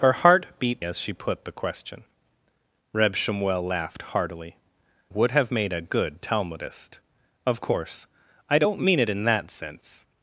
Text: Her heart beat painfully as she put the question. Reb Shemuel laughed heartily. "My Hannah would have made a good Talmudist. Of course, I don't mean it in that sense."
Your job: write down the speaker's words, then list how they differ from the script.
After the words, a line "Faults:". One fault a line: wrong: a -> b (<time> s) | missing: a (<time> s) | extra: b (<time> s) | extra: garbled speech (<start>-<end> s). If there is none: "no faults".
Her heart beat as she put the question. Reb Shemuel laughed heartily. "Would have made a good Talmudist. Of course, I don't mean it in that sense."
Faults:
missing: painfully (0.8 s)
missing: My Hannah (4.6 s)